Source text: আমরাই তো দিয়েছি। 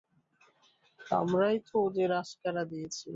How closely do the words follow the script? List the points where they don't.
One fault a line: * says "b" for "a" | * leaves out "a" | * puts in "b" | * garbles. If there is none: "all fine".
* puts in "ওদের আস্কারা"